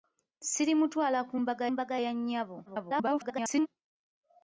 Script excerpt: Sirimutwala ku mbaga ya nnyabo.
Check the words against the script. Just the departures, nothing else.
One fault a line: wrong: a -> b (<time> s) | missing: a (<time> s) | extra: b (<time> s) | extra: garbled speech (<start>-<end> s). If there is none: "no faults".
extra: mbaga (1.7 s)
extra: garbled speech (2.7-3.7 s)